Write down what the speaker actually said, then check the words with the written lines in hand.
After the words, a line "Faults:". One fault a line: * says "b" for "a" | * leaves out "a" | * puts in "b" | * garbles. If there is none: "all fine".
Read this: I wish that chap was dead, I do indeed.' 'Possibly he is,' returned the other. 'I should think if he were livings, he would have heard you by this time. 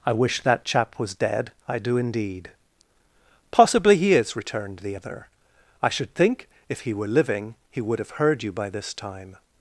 I wish that chap was dead, I do indeed.' 'Possibly he is,' returned the other. 'I should think if he were living, he would have heard you by this time.
Faults:
* says "living" for "livings"